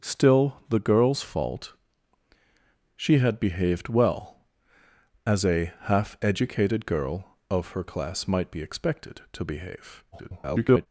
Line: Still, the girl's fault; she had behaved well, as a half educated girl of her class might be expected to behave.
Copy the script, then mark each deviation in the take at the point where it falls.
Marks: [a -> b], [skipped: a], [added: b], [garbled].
Still, the girl's fault; she had behaved well, as a half educated girl of her class might be expected to behave. [garbled]